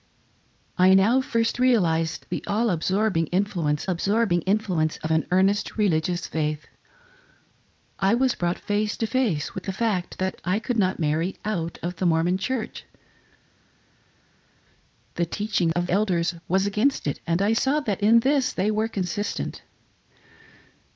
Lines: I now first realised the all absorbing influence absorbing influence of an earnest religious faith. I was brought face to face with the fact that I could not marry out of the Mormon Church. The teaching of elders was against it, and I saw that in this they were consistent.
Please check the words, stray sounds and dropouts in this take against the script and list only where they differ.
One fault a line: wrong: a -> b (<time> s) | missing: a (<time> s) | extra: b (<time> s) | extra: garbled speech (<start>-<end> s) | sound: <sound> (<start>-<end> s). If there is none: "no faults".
no faults